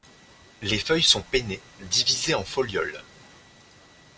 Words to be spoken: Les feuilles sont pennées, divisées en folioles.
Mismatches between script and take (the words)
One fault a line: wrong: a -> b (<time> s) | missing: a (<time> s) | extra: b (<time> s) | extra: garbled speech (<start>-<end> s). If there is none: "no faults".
no faults